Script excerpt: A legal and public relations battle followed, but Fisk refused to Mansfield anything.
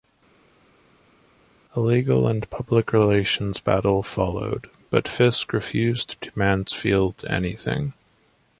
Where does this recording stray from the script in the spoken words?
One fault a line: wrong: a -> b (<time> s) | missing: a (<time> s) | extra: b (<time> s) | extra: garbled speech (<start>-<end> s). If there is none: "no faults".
no faults